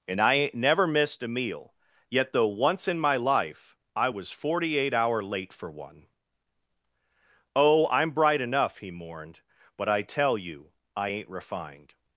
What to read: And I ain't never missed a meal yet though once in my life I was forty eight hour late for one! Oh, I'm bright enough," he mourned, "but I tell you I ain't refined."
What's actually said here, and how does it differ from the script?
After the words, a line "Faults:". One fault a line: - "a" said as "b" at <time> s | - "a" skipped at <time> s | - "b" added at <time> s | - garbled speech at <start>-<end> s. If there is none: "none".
And I ain't never missed a meal yet though once in my life I was forty eight hour late for one! Oh, I'm bright enough," he mourned, "but I tell you I ain't refined."
Faults:
none